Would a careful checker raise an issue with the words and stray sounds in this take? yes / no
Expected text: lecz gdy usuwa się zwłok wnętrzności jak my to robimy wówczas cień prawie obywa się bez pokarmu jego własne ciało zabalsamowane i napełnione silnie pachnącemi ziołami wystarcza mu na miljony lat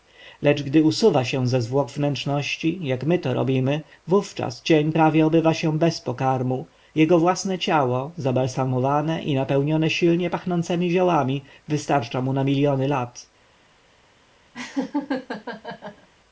yes